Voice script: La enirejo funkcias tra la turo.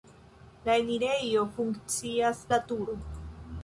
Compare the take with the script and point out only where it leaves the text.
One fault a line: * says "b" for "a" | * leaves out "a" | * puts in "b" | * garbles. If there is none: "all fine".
* leaves out "tra"